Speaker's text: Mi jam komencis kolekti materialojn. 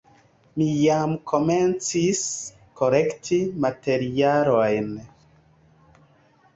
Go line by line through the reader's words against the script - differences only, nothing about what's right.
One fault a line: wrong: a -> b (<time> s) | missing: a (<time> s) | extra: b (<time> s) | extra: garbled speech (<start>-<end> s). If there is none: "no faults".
no faults